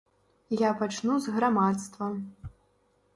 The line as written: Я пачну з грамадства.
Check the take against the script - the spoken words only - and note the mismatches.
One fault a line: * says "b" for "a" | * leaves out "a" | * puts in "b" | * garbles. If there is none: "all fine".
all fine